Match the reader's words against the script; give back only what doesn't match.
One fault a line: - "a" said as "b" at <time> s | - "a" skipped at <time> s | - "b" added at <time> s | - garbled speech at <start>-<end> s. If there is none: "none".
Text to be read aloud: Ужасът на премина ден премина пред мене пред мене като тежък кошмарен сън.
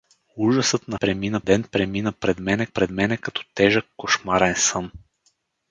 none